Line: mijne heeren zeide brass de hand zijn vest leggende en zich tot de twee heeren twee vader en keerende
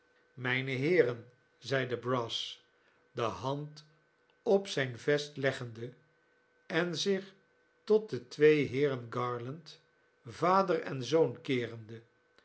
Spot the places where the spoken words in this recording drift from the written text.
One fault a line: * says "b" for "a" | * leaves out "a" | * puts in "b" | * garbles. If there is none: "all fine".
* puts in "op"
* says "garland" for "twee"
* puts in "zoon"